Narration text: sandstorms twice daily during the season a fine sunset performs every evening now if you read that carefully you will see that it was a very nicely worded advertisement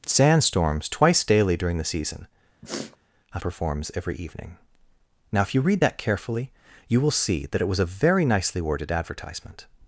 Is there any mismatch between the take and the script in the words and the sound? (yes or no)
yes